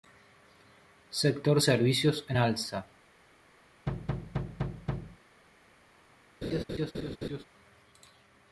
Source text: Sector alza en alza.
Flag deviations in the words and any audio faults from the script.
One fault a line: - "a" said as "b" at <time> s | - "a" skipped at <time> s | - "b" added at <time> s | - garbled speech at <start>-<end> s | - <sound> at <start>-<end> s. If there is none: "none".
- "alza" said as "servicios" at 1.6 s
- thud at 3.9-5.2 s
- laugh at 6.4-7.4 s